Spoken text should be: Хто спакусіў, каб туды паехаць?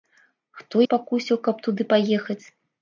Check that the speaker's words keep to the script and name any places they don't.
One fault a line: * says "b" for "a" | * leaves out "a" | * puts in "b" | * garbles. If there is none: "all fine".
all fine